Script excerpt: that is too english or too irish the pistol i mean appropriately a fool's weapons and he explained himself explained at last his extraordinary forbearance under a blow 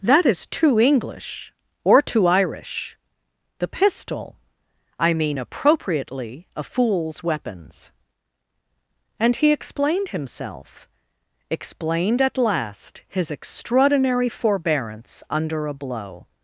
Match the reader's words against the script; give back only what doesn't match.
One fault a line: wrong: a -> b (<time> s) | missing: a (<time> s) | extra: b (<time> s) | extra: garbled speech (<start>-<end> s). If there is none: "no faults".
no faults